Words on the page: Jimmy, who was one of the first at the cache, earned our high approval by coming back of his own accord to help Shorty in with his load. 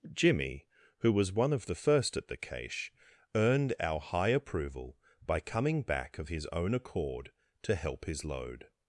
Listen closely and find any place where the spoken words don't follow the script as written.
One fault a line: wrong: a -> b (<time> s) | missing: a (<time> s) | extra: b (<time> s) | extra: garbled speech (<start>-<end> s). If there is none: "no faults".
missing: Shorty in with (8.1 s)